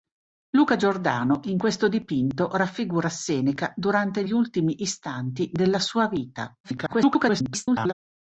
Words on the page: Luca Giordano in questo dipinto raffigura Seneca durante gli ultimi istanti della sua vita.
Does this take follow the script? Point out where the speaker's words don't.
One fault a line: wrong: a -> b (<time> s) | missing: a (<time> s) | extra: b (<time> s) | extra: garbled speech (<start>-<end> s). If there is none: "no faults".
extra: garbled speech (6.6-7.9 s)